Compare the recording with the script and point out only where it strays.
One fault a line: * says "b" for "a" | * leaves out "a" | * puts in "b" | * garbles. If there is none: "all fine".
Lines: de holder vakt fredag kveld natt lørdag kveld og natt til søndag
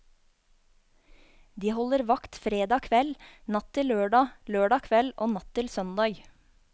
* puts in "til lørdag"